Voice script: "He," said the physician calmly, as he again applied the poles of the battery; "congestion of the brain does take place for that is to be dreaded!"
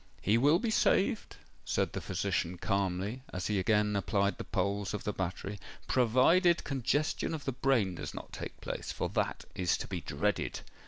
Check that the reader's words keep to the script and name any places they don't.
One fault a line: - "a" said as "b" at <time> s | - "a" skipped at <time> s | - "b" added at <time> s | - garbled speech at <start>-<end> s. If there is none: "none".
- "will be saved" added at 0.3 s
- "provided" added at 5.9 s
- "not" added at 8.1 s